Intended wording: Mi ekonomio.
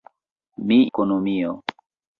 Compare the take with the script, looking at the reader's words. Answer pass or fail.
pass